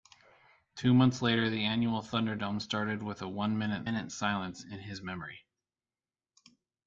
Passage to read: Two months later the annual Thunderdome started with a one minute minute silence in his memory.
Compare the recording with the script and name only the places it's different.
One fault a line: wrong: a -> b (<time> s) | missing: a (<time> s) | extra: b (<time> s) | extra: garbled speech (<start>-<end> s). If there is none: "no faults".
no faults